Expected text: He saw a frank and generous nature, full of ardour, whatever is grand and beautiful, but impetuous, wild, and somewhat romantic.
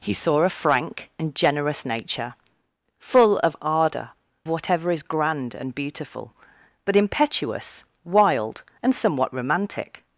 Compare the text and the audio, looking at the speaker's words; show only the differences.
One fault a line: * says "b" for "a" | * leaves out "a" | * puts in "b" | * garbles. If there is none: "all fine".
all fine